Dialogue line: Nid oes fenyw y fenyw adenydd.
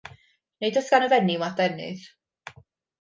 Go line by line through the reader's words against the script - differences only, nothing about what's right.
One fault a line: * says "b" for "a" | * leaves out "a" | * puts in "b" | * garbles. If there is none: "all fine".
* says "gan" for "fenyw"